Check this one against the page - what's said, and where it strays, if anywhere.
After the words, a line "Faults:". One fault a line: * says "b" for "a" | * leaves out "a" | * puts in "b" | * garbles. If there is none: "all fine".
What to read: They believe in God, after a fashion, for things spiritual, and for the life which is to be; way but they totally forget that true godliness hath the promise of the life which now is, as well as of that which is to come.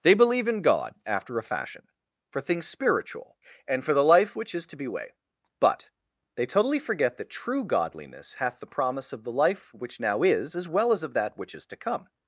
They believe in God, after a fashion, for things spiritual, and for the life which is to be; way but they totally forget that true godliness hath the promise of the life which now is, as well as of that which is to come.
Faults:
all fine